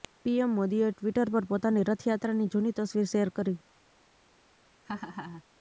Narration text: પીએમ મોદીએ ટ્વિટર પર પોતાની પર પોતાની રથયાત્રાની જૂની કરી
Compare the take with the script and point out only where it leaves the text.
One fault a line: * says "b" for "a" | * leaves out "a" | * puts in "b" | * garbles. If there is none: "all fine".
* says "રથયાત્રાની જૂની તસવીર શેર" for "પર પોતાની રથયાત્રાની જૂની"